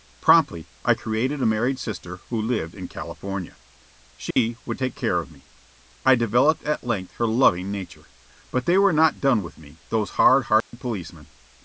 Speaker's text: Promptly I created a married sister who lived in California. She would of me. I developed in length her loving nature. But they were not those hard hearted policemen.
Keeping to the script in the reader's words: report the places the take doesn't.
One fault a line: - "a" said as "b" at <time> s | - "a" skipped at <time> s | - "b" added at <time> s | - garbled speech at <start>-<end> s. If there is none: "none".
- "take care" added at 4.8 s
- "in" said as "at" at 6.6 s
- "done with me" added at 9.2 s